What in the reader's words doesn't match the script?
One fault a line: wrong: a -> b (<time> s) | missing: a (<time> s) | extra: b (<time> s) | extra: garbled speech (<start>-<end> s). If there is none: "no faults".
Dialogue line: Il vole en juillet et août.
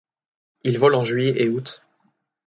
no faults